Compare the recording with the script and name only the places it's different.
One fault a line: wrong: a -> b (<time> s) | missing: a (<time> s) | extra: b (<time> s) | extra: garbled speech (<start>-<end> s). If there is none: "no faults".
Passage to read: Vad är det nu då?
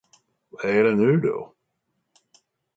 no faults